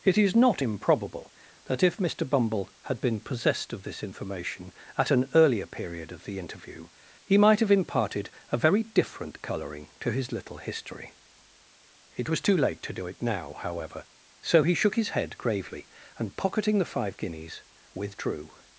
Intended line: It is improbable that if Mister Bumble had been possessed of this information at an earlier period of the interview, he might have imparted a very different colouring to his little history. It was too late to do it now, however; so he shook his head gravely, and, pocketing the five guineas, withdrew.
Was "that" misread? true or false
false